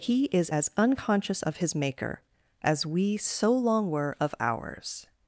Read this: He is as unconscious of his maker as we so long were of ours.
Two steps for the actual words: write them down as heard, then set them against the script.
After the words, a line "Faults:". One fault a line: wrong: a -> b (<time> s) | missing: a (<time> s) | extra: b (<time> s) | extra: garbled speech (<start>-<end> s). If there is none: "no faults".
He is as unconscious of his maker as we so long were of ours.
Faults:
no faults